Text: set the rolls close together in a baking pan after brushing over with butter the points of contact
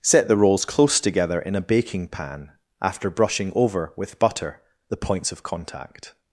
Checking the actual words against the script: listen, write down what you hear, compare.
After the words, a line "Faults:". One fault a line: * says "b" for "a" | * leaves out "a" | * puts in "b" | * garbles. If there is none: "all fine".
set the rolls close together in a baking pan after brushing over with butter the points of contact
Faults:
all fine